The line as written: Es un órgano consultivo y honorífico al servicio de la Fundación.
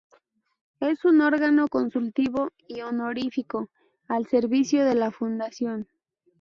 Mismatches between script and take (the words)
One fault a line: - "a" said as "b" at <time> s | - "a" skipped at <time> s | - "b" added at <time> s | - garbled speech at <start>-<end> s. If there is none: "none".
none